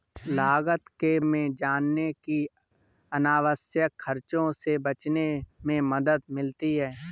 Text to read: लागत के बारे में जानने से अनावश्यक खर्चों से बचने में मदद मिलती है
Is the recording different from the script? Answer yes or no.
yes